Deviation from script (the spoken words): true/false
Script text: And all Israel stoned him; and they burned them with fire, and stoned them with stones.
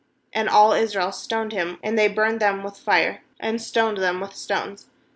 false